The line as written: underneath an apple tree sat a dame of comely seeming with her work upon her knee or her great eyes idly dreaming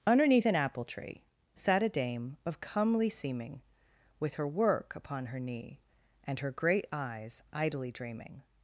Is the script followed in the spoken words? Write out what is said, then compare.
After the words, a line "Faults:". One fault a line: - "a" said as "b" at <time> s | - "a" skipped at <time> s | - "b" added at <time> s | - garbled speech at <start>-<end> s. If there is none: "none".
underneath an apple tree sat a dame of comely seeming with her work upon her knee and her great eyes idly dreaming
Faults:
- "or" said as "and" at 6.2 s